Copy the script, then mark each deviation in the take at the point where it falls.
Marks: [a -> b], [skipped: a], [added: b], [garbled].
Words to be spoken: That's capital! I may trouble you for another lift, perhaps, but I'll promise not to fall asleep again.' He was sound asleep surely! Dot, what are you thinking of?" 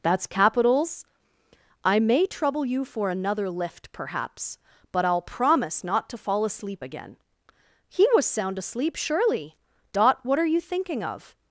That's [capital! -> capitals] I may trouble you for another lift, perhaps, but I'll promise not to fall asleep again.' He was sound asleep surely! Dot, what are you thinking of?"